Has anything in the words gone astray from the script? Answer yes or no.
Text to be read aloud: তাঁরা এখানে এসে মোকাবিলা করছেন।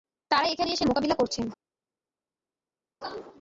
no